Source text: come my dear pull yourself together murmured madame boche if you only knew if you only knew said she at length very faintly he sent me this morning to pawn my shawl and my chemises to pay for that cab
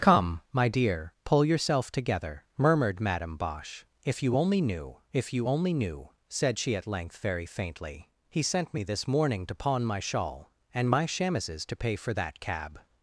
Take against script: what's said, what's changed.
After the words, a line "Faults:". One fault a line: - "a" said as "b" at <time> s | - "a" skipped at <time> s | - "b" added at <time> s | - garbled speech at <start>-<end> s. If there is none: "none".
come my dear pull yourself together murmured madame boche if you only knew if you only knew said she at length very faintly he sent me this morning to pawn my shawl and my chemises to pay for that cab
Faults:
none